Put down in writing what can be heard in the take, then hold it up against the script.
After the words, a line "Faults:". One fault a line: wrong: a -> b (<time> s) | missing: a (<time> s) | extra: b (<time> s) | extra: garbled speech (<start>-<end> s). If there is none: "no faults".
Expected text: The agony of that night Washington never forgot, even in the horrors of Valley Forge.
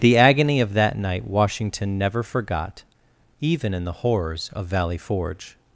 The agony of that night Washington never forgot, even in the horrors of Valley Forge.
Faults:
no faults